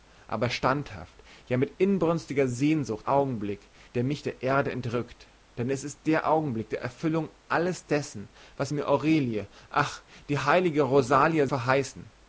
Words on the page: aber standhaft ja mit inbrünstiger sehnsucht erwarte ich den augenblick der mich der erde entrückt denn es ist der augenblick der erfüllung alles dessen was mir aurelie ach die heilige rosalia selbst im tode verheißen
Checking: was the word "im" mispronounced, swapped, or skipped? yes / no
yes